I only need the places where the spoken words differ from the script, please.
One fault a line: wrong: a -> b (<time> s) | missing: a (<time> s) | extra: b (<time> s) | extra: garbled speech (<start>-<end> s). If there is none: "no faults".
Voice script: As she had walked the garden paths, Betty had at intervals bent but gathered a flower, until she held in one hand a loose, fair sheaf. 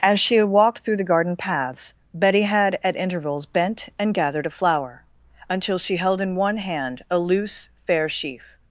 extra: through (0.8 s)
wrong: but -> and (4.0 s)